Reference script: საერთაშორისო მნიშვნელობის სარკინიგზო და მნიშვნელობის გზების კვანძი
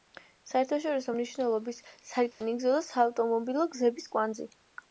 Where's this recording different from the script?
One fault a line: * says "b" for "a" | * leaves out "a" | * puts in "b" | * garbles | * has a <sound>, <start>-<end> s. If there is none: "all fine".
* has a dropout, 2.3-2.4 s
* says "საავტომობილო" for "მნიშვნელობის"